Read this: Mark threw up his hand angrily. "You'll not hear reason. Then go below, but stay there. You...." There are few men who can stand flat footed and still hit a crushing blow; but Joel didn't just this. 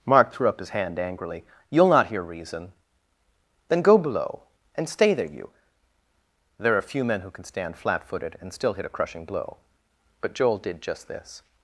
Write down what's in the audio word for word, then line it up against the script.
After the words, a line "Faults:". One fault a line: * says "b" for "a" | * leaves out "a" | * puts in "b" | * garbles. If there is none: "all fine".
Mark threw up his hand angrily. "You'll not hear reason. Then go below, and stay there. You...." There are few men who can stand flat footed and still hit a crushing blow; but Joel did just this.
Faults:
* says "and" for "but"
* says "did" for "didn't"